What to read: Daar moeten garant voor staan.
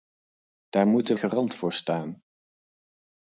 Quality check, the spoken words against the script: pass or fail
pass